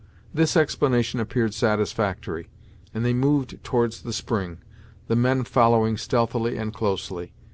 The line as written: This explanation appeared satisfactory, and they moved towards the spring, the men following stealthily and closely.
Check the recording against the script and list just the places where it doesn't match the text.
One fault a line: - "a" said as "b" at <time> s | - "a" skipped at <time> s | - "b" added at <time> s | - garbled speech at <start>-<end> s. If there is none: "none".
none